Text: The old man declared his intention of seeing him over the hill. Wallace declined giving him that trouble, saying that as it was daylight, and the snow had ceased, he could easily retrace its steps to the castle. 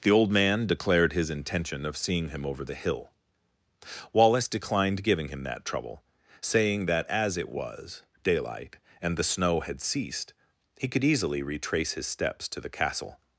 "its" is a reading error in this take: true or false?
true